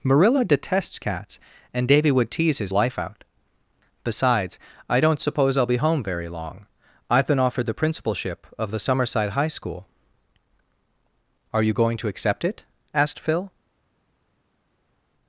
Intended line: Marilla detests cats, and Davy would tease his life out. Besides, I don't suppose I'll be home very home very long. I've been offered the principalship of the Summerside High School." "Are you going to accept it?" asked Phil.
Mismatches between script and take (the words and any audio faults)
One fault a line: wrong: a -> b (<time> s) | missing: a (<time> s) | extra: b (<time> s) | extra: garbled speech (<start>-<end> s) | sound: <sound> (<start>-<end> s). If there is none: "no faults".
missing: home very (6.3 s)